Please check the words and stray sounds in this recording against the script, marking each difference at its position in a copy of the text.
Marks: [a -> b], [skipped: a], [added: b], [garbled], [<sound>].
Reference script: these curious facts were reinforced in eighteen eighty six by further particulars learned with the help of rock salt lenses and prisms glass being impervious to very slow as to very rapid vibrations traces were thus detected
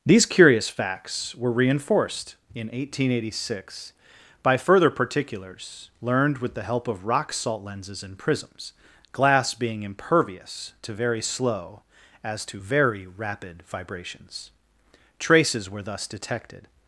these curious facts were reinforced in eighteen eighty six by further particulars learned with the help of rock salt lenses and prisms glass being impervious to very slow as to very rapid vibrations traces were thus detected